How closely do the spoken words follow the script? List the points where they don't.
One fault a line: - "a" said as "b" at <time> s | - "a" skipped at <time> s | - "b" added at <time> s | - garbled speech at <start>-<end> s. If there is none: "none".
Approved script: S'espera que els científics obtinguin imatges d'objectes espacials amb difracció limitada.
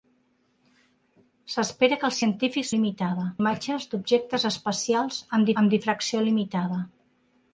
- "obtinguin" said as "limitada" at 2.8 s
- "amb" added at 5.6 s